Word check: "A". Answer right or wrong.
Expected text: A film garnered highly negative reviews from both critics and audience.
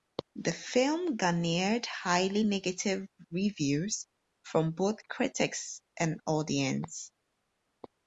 wrong